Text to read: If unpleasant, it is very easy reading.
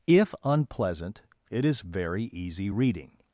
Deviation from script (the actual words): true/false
false